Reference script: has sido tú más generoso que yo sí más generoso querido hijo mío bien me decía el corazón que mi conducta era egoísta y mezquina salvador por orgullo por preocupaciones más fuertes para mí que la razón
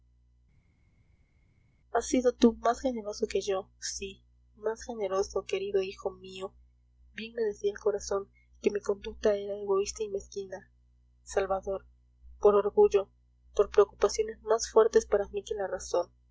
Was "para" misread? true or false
false